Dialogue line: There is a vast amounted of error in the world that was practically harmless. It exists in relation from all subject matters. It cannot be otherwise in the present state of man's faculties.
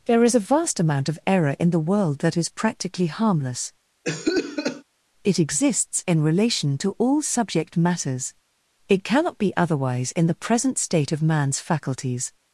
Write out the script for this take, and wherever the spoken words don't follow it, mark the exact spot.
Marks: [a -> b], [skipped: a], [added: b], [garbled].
There is a vast [amounted -> amount] of error in the world that [was -> is] practically harmless. It exists in relation [from -> to] all subject matters. It cannot be otherwise in the present state of man's faculties.